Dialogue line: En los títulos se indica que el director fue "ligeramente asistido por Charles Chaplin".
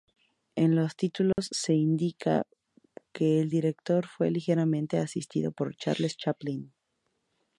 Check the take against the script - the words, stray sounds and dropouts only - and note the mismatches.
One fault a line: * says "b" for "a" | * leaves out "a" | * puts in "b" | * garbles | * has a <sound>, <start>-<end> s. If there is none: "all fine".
* has a dropout, 1.3-1.4 s